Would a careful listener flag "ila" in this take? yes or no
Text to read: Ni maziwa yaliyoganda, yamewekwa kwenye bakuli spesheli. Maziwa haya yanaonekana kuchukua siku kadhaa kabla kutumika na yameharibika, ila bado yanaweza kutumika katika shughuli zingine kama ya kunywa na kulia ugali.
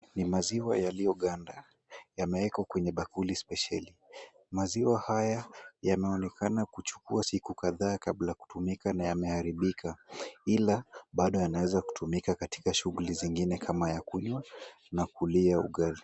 no